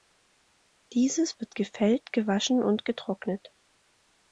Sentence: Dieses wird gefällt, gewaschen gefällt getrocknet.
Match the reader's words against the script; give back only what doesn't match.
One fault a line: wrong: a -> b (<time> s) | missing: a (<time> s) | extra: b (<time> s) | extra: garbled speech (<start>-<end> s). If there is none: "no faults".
wrong: gefällt -> und (2.6 s)